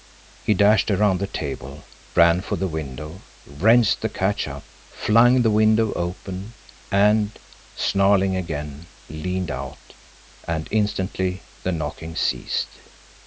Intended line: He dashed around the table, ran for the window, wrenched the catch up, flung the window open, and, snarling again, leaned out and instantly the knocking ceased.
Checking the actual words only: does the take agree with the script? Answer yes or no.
yes